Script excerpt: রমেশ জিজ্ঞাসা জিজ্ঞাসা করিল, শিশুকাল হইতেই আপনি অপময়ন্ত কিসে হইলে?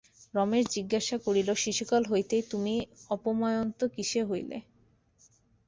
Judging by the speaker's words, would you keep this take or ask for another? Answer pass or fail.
fail